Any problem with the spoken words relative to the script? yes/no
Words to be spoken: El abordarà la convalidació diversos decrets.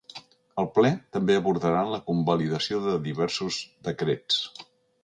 yes